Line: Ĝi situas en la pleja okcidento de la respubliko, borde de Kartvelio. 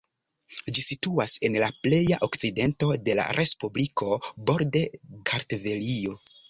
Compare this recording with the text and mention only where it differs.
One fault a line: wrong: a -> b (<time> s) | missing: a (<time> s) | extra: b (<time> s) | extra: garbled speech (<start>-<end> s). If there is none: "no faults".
missing: de (4.8 s)